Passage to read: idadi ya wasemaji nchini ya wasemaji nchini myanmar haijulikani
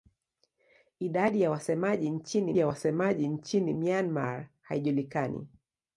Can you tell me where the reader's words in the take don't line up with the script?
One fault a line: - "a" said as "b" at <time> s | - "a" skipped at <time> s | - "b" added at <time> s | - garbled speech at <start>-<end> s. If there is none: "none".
none